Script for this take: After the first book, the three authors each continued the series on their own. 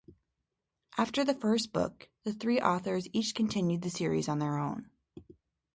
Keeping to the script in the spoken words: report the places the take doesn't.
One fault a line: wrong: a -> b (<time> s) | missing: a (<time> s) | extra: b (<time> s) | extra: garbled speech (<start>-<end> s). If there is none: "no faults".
no faults